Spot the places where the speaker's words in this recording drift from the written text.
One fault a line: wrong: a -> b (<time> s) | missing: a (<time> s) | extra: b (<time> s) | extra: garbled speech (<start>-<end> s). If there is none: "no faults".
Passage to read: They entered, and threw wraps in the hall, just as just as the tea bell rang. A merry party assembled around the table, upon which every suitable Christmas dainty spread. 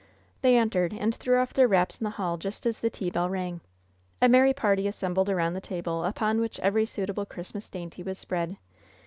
extra: off their (1.4 s)
missing: just as (2.8 s)
extra: was (8.0 s)